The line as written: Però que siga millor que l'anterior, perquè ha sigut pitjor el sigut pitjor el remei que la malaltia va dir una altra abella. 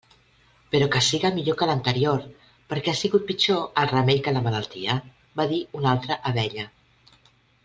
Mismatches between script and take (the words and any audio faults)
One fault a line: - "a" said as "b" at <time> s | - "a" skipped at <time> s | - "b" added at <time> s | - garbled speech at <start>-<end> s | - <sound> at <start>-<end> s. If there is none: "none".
- "sigut pitjor el" skipped at 3.9 s